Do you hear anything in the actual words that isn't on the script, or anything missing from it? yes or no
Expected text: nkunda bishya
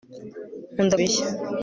no